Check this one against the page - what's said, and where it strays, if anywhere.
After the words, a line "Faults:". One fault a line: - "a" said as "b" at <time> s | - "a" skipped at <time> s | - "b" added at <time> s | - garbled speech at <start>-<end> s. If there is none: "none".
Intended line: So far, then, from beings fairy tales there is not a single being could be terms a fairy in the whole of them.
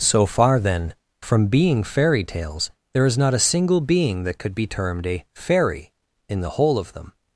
So far, then, from being fairy tales there is not a single being that could be termed a fairy in the whole of them.
Faults:
- "beings" said as "being" at 1.4 s
- "that" added at 4.2 s
- "terms" said as "termed" at 4.7 s